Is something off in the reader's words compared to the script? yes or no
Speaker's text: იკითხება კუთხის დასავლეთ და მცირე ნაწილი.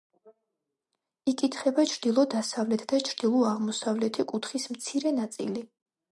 yes